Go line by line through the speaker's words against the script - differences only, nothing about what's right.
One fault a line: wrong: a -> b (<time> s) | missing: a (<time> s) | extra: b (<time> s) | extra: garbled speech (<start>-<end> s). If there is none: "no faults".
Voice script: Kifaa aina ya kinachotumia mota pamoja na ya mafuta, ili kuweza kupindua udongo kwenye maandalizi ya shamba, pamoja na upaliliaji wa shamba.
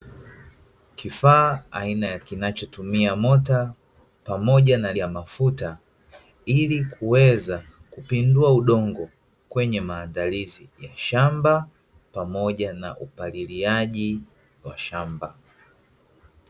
no faults